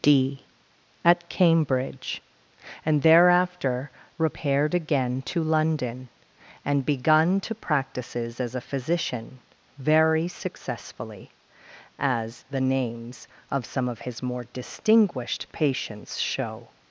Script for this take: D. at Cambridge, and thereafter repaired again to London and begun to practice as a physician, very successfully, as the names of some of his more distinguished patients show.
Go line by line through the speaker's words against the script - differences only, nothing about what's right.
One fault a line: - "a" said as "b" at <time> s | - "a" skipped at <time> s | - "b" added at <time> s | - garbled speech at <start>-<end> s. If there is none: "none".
- "practice" said as "practices" at 7.5 s